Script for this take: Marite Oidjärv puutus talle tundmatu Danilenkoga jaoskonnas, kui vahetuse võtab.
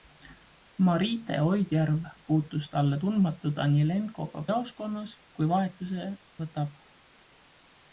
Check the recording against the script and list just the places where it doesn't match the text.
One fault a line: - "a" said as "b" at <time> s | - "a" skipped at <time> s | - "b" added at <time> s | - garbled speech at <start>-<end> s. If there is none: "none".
none